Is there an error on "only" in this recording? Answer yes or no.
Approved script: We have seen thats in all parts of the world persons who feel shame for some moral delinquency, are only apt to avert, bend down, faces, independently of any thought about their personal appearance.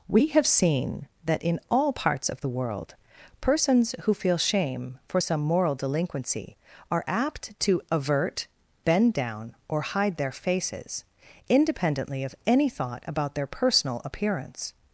yes